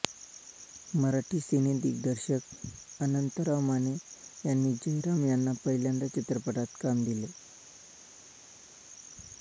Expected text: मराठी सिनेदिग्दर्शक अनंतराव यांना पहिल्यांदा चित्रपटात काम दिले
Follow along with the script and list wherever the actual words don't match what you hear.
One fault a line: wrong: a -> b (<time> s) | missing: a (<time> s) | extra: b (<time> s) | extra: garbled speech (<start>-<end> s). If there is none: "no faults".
extra: माने यांनी जयराम (3.6 s)